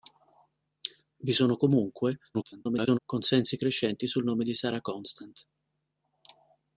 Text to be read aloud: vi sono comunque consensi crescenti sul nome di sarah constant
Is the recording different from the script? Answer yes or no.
yes